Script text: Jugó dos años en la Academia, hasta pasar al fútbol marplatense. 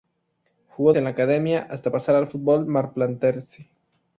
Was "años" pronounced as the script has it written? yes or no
no